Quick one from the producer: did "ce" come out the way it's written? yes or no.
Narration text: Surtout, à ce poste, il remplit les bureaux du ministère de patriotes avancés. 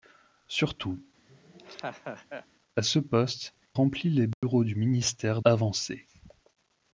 yes